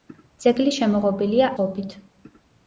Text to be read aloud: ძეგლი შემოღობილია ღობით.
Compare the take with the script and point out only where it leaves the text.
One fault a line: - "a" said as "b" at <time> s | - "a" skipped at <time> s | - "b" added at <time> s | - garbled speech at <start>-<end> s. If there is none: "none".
none